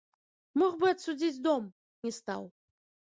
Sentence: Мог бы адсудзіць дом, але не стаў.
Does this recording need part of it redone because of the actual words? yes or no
yes